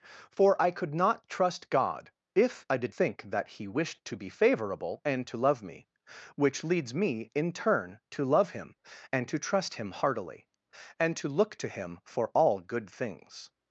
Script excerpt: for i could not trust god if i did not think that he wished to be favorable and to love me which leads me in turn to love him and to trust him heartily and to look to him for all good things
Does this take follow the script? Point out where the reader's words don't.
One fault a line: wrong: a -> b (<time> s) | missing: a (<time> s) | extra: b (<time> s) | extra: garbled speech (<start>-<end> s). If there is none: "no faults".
missing: not (3.0 s)